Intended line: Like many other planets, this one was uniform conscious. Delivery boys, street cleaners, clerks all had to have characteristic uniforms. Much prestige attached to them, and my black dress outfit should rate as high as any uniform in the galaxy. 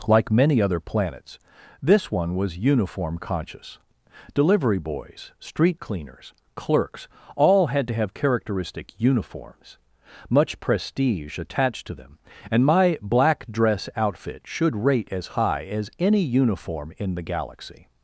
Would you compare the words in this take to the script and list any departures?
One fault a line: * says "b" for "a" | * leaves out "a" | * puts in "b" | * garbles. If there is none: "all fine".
all fine